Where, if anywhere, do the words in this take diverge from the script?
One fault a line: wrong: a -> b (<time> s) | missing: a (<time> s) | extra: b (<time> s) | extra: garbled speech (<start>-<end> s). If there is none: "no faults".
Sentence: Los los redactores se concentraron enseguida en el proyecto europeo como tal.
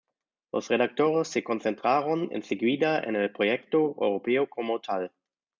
missing: los (0.7 s)